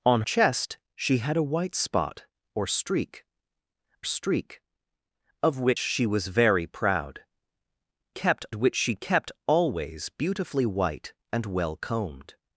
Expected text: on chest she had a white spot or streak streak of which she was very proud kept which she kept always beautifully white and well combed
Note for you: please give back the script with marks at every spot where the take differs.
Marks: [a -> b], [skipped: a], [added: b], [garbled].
on chest she had a white spot or streak streak of which she was very proud kept which she kept always beautifully white and well combed